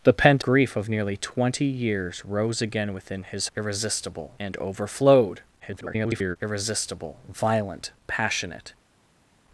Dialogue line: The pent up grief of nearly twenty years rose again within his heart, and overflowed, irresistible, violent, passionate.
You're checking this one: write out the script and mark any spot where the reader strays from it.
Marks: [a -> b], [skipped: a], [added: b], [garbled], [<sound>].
The pent [skipped: up] grief of nearly twenty years rose again within his [heart, -> irresistible] and overflowed, [garbled] irresistible, violent, passionate.